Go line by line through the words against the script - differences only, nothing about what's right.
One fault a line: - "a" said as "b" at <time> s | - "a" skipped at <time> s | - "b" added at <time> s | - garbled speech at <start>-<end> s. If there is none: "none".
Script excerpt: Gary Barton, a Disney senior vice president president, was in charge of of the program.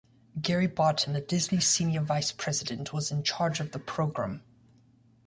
- "president" skipped at 3.0 s
- "of" skipped at 3.7 s